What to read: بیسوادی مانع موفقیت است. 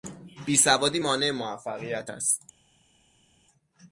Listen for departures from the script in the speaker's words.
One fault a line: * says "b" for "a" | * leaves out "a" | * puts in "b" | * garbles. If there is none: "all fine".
all fine